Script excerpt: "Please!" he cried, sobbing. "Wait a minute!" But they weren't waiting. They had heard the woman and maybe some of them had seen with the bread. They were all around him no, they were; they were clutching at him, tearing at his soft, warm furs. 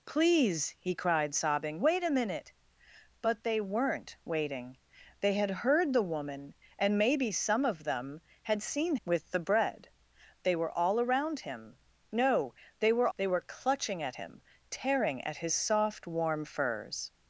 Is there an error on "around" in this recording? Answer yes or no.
no